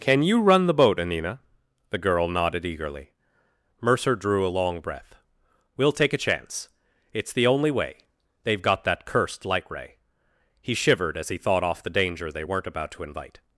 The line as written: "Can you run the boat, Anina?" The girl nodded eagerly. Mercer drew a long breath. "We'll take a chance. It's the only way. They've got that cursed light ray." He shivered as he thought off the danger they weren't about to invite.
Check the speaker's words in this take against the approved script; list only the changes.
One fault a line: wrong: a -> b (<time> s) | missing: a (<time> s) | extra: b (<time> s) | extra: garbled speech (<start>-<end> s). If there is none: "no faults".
no faults